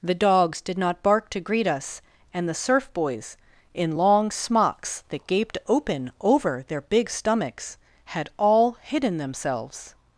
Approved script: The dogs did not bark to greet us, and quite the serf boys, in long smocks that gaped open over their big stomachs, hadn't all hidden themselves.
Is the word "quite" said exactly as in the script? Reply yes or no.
no